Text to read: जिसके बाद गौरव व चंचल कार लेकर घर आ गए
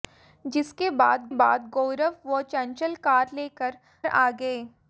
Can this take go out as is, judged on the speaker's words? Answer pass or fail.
fail